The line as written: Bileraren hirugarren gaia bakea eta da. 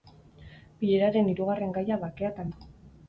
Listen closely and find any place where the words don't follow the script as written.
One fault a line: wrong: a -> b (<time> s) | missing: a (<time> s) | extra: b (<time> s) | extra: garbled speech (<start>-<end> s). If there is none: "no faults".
no faults